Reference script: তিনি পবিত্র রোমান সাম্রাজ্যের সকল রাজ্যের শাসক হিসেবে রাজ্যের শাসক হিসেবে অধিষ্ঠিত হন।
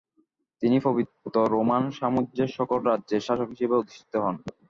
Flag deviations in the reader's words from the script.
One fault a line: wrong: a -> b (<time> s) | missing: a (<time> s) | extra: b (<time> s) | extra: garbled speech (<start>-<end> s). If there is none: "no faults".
missing: রাজ্যের শাসক হিসেবে (3.8 s)